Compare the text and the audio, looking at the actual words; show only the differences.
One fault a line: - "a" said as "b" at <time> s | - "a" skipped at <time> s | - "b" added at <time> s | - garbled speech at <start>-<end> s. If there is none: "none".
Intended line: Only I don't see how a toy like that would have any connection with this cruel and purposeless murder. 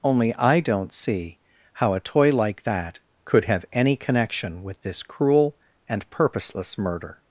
- "would" said as "could" at 3.2 s